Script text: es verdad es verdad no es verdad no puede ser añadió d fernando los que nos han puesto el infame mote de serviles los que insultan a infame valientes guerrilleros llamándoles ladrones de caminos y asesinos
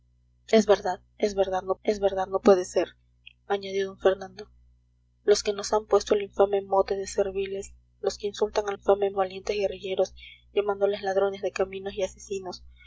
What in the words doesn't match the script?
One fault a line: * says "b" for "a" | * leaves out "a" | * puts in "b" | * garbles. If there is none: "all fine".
all fine